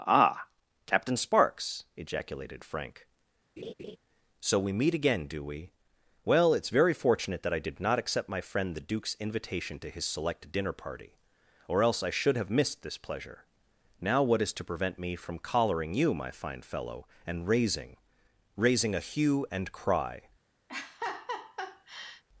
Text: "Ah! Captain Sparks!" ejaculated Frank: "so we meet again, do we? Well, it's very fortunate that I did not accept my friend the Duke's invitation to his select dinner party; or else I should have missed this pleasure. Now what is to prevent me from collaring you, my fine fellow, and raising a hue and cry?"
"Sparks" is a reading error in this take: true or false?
false